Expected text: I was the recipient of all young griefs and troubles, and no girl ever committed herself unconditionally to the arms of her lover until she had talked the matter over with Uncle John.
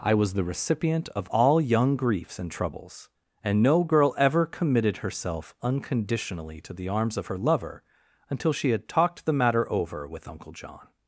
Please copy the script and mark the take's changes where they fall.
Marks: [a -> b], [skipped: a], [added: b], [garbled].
I was the recipient of all young griefs and troubles, and no girl ever committed herself unconditionally to the arms of her lover until she had talked the matter over with Uncle John.